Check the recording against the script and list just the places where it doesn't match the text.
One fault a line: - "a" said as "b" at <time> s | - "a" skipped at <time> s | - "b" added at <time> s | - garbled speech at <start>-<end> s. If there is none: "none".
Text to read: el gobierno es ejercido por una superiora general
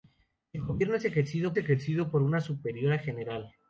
- "ejercido" added at 1.6 s